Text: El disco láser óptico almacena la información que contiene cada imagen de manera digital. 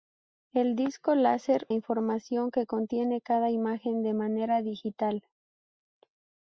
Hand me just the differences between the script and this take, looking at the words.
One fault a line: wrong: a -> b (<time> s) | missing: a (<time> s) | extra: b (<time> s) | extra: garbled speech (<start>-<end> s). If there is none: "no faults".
missing: óptico almacena la (1.7 s)